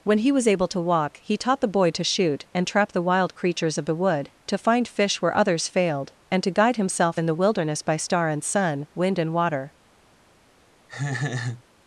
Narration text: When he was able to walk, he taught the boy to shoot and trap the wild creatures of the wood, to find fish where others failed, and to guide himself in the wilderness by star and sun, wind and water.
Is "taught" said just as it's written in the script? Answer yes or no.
yes